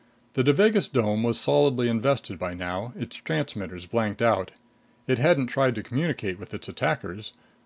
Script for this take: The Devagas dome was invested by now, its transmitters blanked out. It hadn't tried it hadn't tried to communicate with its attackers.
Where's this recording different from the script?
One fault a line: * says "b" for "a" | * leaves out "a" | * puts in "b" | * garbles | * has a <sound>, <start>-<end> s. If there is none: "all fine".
* puts in "solidly"
* leaves out "it hadn't tried"